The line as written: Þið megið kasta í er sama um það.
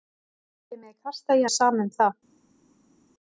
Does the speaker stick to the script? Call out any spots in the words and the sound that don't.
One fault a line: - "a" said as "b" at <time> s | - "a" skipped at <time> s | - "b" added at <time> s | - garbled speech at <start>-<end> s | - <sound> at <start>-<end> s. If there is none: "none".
none